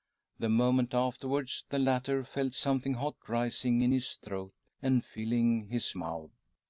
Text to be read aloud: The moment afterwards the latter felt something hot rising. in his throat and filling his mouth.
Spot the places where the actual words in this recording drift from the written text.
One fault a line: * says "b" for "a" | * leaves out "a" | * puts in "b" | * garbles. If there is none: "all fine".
all fine